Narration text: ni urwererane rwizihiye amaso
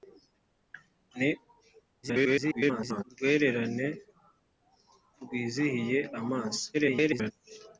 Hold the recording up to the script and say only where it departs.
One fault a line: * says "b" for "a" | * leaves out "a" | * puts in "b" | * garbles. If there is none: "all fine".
* garbles
* garbles